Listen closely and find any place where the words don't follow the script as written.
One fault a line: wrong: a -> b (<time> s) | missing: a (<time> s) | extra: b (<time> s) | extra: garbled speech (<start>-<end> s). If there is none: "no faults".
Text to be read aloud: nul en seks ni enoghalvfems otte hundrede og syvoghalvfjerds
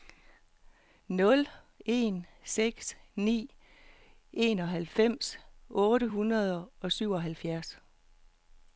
no faults